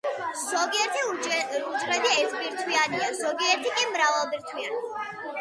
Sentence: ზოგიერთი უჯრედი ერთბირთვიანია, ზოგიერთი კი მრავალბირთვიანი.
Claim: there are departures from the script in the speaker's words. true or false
false